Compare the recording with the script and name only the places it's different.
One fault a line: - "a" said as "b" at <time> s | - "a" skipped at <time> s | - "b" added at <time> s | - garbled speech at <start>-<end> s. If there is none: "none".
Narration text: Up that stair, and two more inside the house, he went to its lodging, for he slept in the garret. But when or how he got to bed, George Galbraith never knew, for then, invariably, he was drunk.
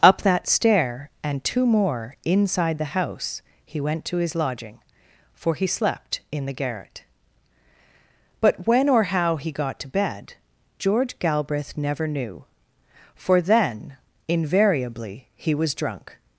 - "its" said as "his" at 4.2 s